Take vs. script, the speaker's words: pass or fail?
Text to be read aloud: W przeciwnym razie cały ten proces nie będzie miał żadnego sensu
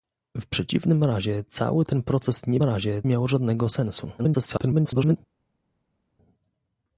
fail